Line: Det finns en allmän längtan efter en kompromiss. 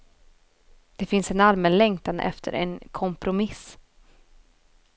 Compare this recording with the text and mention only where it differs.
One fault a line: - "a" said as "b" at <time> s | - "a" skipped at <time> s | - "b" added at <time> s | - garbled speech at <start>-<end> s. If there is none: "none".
none